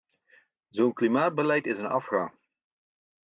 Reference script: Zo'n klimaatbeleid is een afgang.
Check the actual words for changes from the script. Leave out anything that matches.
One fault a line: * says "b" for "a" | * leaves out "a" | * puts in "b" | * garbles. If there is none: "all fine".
all fine